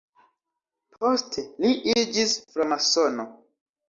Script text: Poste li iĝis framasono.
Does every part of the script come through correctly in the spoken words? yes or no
yes